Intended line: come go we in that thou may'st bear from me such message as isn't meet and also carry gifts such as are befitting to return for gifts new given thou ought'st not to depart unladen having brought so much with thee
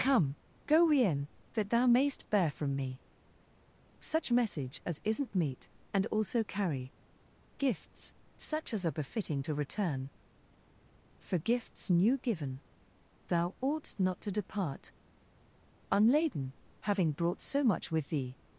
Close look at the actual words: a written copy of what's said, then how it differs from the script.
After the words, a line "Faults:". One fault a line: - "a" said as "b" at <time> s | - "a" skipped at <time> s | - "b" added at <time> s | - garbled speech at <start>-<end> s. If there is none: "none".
come go we in that thou may'st bear from me such message as isn't meet and also carry gifts such as are befitting to return for gifts new given thou ought'st not to depart unladen having brought so much with thee
Faults:
none